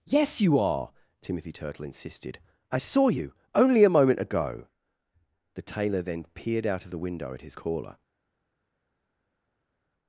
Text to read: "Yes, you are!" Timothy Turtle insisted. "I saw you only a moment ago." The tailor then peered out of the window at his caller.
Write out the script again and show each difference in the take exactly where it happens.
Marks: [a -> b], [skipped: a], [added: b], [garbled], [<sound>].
"Yes, you are!" Timothy Turtle insisted. "I saw you only a moment ago." The tailor then peered out of the window at his caller.